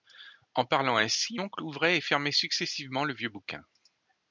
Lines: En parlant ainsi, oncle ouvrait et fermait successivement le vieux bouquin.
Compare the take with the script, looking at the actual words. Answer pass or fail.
pass